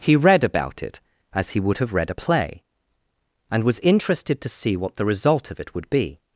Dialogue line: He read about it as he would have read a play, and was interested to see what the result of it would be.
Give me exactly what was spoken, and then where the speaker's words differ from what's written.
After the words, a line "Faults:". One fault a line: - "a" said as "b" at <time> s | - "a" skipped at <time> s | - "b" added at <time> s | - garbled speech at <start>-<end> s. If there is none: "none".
He read about it as he would have read a play, and was interested to see what the result of it would be.
Faults:
none